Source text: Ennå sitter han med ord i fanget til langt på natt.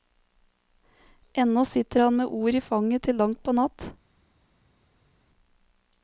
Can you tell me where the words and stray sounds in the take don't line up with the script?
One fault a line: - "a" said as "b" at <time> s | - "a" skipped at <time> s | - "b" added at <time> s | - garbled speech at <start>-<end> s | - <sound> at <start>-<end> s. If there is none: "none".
none